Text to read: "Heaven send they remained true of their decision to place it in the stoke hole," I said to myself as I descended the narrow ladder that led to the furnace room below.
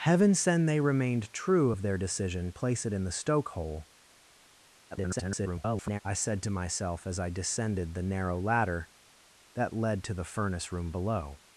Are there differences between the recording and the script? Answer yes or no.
yes